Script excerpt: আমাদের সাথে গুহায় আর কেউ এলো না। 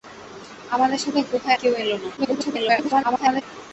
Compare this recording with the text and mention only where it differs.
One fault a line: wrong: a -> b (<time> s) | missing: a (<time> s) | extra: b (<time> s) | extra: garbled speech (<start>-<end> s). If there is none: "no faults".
missing: আর (1.6 s)
extra: garbled speech (2.2-3.4 s)